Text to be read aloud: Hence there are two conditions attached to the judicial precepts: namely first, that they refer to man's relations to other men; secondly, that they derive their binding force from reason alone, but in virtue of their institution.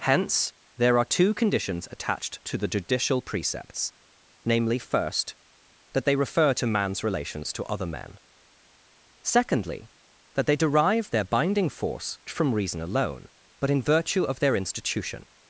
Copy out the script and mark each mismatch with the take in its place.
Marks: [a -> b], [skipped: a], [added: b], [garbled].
Hence there are two conditions attached to the judicial precepts: namely first, that they refer to man's relations to other men; secondly, that they derive their binding force from reason alone, but in virtue of their institution.